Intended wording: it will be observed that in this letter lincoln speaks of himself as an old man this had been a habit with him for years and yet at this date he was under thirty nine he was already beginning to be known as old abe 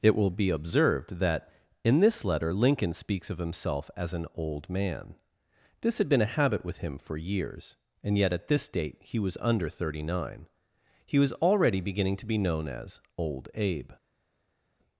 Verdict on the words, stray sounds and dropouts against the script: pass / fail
pass